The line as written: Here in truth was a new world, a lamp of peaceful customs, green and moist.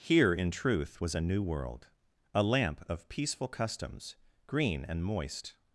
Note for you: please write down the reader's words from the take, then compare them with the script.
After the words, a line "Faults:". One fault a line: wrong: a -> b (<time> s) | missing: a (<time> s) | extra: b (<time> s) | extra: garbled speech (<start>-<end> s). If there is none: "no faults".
Here in truth was a new world, a lamp of peaceful customs, green and moist.
Faults:
no faults